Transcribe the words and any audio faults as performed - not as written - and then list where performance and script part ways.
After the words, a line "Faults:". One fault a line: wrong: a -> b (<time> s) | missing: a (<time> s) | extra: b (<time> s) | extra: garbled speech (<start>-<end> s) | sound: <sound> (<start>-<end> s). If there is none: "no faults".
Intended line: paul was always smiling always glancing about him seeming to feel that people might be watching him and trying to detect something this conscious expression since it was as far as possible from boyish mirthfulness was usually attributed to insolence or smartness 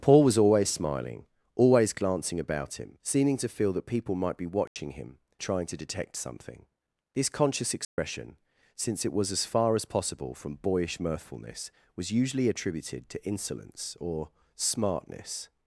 paul was always smiling always glancing about him seeming to feel that people might be watching him trying to detect something this conscious expression since it was as far as possible from boyish mirthfulness was usually attributed to insolence or smartness
Faults:
sound: dropout (4.7-4.8 s)
missing: and (5.2 s)
sound: dropout (7.8-8.0 s)